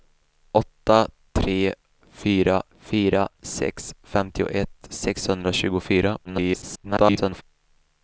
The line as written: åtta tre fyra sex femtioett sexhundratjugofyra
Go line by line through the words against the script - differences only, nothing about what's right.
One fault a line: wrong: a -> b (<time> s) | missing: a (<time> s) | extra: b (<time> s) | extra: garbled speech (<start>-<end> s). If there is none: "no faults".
extra: fyra (2.8 s)
extra: garbled speech (6.2-7.4 s)